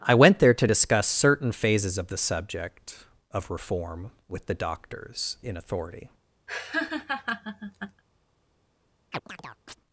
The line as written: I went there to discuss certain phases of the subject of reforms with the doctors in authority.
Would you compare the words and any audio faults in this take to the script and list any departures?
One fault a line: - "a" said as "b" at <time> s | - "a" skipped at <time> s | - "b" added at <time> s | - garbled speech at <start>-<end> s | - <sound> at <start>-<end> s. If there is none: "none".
- "reforms" said as "reform" at 3.5 s
- laugh at 6.5-8.0 s
- chirp at 9.1-9.8 s